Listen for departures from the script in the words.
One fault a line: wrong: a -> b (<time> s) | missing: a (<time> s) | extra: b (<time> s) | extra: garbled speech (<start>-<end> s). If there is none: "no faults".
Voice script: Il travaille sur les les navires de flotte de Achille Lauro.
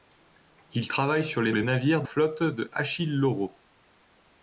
no faults